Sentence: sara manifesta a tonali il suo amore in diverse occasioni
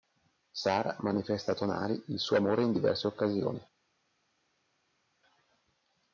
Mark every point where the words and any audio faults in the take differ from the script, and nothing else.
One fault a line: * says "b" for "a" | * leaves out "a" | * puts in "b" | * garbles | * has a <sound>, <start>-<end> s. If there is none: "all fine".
all fine